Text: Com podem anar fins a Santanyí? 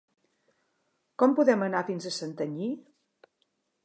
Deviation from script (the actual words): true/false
false